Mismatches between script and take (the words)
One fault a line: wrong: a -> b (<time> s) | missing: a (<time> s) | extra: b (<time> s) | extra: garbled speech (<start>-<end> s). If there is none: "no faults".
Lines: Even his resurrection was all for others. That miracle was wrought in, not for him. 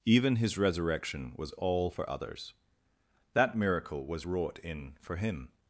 missing: not (5.0 s)